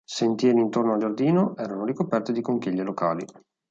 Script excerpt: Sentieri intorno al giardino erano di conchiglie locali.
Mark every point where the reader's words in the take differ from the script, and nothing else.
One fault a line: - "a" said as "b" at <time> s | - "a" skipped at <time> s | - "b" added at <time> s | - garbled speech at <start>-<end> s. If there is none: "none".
- "ricoperti" added at 1.8 s